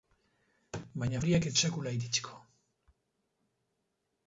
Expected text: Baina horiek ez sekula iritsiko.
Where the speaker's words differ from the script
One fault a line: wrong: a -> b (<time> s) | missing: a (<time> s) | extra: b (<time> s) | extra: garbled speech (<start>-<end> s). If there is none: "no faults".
no faults